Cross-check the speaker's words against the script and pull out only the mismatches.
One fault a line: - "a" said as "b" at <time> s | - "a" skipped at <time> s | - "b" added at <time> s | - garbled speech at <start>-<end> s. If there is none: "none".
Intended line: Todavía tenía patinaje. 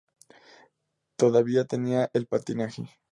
- "el" added at 2.1 s